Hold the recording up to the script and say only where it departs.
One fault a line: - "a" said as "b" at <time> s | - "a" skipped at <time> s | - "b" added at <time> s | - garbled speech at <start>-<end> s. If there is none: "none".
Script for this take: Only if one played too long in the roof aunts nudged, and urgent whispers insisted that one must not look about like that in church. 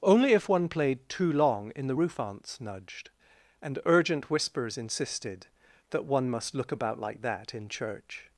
- "not" skipped at 6.5 s